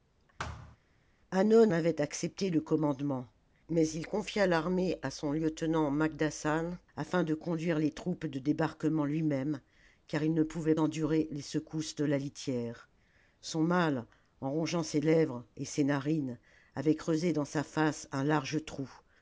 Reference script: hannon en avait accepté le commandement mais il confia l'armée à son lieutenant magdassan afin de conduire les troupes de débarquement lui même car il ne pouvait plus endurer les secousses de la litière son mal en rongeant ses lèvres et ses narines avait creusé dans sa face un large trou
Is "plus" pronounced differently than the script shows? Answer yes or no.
yes